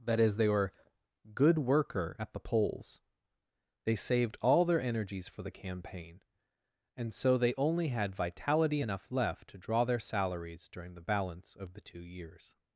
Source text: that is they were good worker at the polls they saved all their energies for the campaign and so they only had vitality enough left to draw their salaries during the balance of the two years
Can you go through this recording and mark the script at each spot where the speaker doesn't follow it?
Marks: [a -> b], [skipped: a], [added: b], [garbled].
that is they were good worker at the polls they saved all their energies for the campaign and so they only had vitality enough left to draw their salaries during the balance of the two years